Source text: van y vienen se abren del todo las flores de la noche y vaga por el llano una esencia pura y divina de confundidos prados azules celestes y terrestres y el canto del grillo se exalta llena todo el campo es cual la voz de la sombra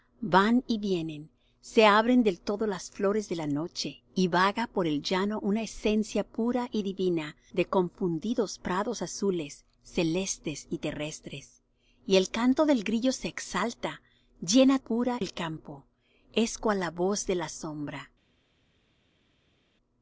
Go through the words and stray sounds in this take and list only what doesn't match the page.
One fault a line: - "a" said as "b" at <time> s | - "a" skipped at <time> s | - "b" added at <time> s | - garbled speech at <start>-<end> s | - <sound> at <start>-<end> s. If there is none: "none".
- "todo" said as "pura" at 14.8 s